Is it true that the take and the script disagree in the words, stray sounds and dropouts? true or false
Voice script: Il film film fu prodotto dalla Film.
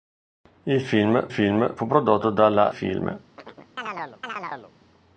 true